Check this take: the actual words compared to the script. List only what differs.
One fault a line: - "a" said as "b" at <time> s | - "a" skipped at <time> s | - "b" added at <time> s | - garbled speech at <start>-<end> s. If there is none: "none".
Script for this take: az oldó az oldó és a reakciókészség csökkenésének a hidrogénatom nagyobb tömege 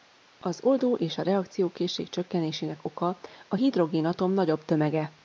- "az oldó" skipped at 0.9 s
- "oka" added at 2.9 s